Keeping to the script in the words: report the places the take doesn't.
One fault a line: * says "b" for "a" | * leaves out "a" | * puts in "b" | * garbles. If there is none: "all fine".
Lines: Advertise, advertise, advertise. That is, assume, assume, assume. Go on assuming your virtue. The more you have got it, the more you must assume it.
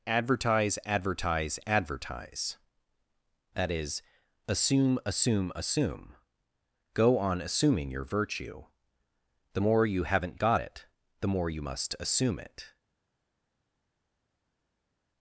* says "haven't" for "have"